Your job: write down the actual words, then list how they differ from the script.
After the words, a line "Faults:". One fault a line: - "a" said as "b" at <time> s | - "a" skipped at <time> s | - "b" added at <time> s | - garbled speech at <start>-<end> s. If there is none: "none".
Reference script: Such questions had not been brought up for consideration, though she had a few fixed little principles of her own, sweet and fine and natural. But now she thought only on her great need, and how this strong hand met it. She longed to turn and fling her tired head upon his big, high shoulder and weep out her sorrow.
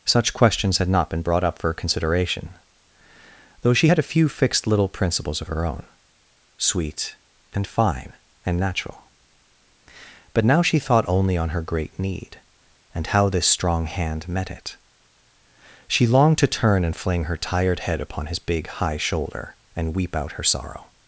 Such questions had not been brought up for consideration, though she had a few fixed little principles of her own, sweet and fine and natural. But now she thought only on her great need, and how this strong hand met it. She longed to turn and fling her tired head upon his big, high shoulder and weep out her sorrow.
Faults:
none